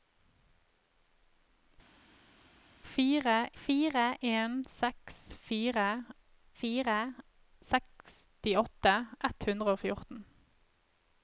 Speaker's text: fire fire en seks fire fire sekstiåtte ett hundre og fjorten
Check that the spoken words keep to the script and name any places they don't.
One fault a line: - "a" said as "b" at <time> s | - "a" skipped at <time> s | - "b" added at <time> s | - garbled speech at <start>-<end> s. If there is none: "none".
none